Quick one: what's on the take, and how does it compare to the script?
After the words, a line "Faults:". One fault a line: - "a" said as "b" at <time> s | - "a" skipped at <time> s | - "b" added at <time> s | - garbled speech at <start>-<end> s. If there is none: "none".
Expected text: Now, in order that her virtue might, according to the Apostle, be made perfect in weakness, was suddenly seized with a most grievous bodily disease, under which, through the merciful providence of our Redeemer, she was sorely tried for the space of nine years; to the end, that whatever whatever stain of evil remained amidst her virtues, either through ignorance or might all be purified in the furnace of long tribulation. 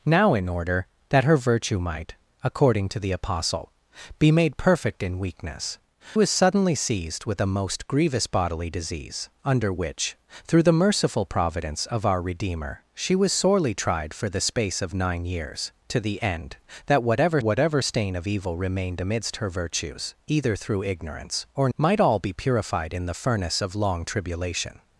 Now, in order that her virtue might, according to the Apostle, be made perfect in weakness, was suddenly seized with a most grievous bodily disease, under which, through the merciful providence of our Redeemer, she was sorely tried for the space of nine years; to the end, that whatever whatever stain of evil remained amidst her virtues, either through ignorance or might all be purified in the furnace of long tribulation.
Faults:
none